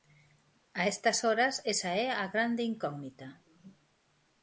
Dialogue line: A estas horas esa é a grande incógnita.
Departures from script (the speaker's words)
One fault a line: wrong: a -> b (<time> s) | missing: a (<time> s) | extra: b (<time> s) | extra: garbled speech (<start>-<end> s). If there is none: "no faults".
no faults